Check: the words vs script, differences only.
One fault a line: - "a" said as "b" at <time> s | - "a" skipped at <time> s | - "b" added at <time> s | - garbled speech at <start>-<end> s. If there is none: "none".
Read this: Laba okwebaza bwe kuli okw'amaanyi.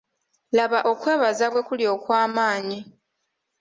none